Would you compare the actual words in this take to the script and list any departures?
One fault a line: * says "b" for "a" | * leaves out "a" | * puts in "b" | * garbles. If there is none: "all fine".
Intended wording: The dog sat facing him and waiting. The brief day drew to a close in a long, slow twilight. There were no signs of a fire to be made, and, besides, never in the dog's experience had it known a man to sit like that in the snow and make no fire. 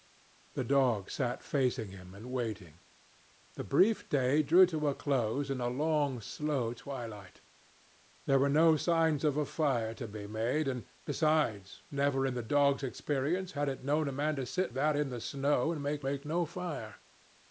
* leaves out "like"
* puts in "make"